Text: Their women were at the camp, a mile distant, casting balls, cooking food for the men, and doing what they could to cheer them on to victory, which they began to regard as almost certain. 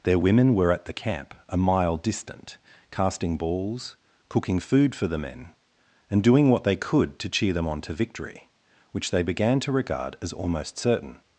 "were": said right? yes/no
yes